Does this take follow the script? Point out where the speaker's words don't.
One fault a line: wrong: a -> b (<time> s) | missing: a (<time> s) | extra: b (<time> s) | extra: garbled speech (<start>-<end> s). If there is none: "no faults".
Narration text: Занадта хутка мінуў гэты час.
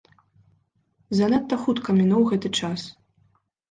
no faults